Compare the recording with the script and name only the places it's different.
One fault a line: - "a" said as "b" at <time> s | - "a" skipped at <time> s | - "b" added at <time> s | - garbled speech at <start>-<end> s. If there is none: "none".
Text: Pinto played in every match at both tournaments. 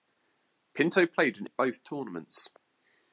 - "every match" skipped at 1.5 s